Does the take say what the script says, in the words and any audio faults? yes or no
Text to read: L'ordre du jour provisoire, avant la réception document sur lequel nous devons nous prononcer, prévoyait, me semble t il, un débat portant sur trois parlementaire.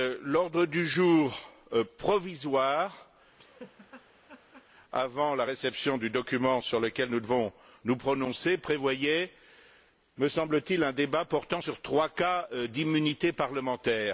no